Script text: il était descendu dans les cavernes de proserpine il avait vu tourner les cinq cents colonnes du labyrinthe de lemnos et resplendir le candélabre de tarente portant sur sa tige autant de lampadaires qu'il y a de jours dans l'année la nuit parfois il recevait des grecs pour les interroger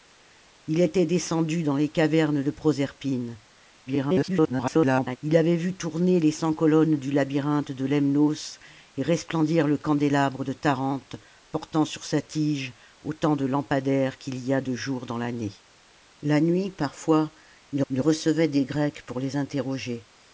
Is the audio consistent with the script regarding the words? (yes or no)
no